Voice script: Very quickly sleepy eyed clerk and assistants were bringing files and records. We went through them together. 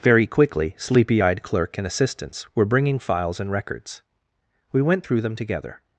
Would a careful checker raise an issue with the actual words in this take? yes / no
no